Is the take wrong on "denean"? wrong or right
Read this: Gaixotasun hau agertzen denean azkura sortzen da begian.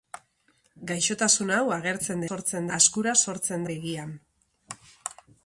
wrong